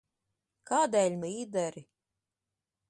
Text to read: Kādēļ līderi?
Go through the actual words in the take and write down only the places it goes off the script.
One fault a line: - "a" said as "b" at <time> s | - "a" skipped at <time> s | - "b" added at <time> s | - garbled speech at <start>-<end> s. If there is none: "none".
none